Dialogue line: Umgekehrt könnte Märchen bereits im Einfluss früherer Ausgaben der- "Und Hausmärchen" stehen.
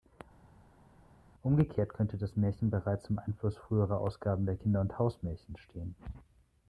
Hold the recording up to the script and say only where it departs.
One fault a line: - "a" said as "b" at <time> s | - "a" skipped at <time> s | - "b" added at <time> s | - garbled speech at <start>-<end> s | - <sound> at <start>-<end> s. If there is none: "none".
- "das" added at 2.2 s
- "Kinder" added at 4.5 s